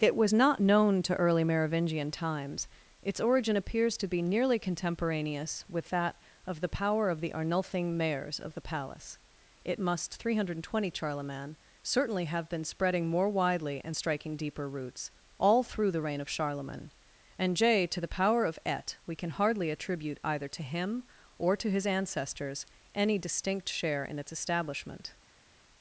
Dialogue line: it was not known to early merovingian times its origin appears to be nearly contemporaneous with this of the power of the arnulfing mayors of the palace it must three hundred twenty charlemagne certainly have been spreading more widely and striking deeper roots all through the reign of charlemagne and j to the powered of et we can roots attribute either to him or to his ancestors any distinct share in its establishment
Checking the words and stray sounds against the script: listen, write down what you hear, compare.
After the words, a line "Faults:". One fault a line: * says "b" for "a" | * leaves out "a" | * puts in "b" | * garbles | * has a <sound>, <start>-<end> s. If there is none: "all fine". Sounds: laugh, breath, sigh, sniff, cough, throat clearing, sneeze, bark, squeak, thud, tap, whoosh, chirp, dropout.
it was not known to early merovingian times its origin appears to be nearly contemporaneous with that of the power of the arnulfing mayors of the palace it must three hundred twenty charlemagne certainly have been spreading more widely and striking deeper roots all through the reign of charlemagne and j to the power of et we can hardly attribute either to him or to his ancestors any distinct share in its establishment
Faults:
* says "that" for "this"
* says "power" for "powered"
* says "hardly" for "roots"